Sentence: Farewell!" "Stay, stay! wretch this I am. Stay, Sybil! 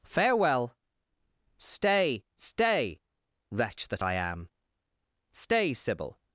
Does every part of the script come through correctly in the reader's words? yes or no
no